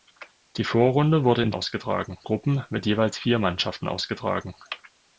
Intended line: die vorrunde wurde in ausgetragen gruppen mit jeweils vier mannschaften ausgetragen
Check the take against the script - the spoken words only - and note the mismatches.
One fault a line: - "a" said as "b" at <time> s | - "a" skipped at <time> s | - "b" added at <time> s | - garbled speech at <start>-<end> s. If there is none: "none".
none